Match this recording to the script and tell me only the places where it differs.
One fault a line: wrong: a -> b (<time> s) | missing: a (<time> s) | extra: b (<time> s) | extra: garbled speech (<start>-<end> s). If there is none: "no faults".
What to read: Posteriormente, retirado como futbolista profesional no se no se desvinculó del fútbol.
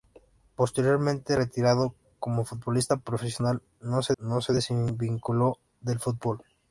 no faults